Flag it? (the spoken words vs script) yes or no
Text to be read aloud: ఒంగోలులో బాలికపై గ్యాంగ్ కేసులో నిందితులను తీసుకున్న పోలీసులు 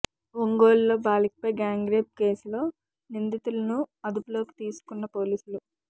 yes